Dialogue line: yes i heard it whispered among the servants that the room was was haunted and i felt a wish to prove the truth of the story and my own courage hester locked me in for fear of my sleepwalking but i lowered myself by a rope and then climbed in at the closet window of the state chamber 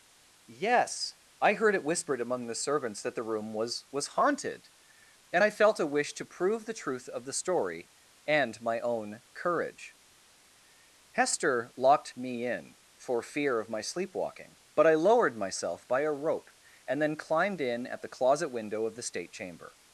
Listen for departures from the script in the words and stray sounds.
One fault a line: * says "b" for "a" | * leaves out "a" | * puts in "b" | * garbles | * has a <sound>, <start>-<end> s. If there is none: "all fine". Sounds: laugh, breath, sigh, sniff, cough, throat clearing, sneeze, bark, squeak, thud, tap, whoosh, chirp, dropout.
all fine